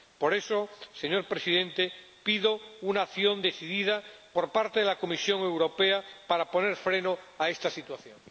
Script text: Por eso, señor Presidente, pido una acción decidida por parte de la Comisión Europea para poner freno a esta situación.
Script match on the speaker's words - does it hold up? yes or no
yes